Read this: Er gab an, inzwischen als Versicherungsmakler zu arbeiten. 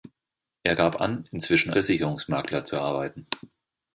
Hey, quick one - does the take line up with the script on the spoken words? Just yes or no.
no